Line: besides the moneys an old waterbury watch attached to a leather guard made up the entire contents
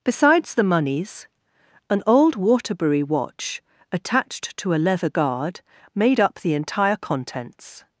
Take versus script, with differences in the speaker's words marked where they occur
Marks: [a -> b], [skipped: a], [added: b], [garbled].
besides the moneys an old waterbury watch attached to a leather guard made up the entire contents